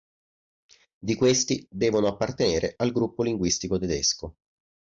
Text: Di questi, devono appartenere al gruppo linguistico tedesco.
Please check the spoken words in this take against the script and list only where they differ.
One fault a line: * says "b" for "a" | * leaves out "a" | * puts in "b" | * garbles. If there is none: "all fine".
all fine